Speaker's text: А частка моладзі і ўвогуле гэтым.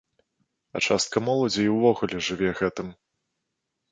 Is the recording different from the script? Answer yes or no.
yes